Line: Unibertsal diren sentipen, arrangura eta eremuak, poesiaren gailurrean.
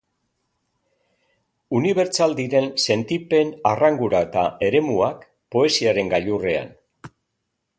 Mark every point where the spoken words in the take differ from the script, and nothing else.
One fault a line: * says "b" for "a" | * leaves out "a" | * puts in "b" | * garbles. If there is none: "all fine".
all fine